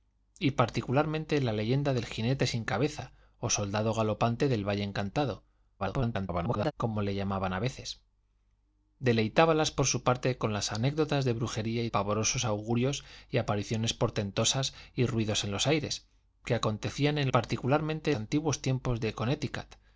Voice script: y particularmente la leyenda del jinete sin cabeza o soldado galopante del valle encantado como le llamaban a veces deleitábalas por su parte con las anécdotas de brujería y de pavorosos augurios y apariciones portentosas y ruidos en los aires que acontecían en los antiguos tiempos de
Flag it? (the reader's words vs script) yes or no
yes